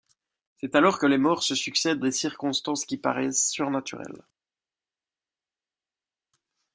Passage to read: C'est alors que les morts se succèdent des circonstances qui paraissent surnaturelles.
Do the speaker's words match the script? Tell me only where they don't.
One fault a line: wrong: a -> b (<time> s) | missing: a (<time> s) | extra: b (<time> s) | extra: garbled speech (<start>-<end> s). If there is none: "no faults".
no faults